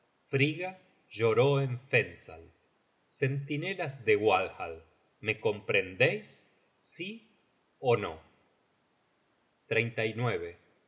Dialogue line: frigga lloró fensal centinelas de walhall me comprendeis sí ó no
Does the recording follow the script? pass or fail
fail